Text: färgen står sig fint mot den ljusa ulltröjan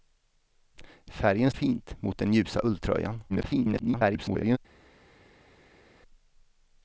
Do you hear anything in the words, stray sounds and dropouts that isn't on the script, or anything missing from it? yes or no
yes